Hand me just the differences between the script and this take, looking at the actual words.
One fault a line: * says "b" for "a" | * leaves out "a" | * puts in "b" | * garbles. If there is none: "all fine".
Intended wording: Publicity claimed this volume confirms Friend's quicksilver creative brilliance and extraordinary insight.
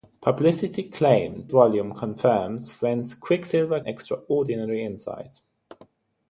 * leaves out "this"
* leaves out "creative brilliance and"